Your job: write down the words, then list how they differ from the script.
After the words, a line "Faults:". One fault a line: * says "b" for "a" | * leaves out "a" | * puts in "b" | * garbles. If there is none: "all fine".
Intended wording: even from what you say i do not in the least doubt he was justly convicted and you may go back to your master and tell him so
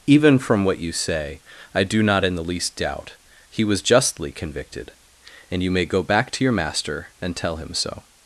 even from what you say i do not in the least doubt he was justly convicted and you may go back to your master and tell him so
Faults:
all fine